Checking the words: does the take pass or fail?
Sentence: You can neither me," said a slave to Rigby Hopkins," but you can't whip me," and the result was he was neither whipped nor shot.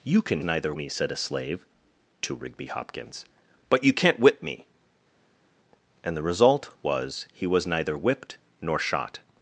pass